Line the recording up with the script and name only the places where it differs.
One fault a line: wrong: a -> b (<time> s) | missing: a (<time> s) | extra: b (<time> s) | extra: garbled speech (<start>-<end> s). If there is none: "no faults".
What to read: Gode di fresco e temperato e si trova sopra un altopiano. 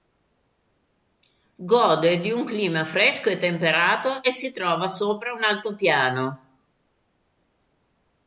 extra: un clima (2.3 s)